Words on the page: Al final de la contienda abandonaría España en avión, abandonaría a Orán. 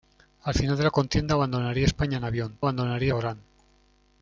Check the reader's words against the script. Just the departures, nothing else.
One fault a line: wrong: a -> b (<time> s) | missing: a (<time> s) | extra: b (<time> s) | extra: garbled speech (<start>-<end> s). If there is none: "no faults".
no faults